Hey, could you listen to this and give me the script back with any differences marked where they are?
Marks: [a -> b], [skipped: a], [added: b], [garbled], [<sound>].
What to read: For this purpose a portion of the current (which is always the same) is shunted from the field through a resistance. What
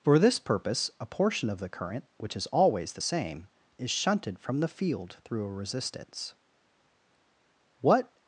For this purpose a portion of the current (which is always the same) is shunted from the field through a resistance. What